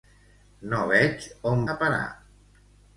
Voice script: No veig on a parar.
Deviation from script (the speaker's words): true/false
false